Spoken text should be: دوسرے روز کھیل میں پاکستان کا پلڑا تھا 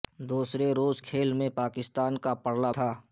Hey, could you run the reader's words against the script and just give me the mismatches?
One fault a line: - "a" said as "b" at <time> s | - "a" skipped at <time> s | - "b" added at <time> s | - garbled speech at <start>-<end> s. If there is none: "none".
none